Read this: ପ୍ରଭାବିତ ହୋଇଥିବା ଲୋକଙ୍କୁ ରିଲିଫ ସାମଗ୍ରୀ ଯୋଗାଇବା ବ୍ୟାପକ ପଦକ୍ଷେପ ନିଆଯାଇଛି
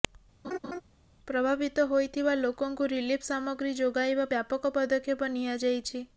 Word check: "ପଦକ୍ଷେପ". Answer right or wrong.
right